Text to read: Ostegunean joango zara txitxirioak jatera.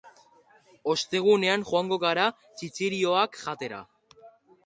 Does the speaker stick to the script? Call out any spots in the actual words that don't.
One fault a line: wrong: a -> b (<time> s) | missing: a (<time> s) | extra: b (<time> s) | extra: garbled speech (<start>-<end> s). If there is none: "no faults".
wrong: zara -> gara (2.0 s)